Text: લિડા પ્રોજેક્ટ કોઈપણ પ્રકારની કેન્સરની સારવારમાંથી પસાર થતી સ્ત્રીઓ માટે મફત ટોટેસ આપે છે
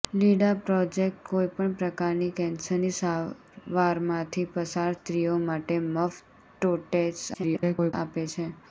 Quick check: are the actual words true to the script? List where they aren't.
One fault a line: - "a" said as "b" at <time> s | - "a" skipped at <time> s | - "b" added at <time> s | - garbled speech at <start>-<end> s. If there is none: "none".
- "થતી" skipped at 5.0 s
- garbled speech at 7.3-7.9 s